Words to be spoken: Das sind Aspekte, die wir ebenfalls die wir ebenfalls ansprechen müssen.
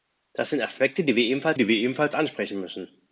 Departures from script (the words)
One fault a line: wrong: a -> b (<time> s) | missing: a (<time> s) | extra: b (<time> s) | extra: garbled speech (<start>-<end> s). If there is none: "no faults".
no faults